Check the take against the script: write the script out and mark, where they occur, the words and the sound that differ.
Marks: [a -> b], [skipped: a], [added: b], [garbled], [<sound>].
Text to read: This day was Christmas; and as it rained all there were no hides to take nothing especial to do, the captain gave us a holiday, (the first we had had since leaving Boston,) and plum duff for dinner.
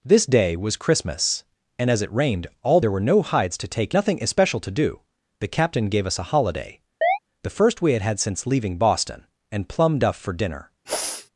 This day was Christmas; and as it rained all there were no hides to take nothing especial to do, the captain gave us a holiday, [chirp] (the first we had had since leaving Boston,) and plum duff for dinner. [sniff]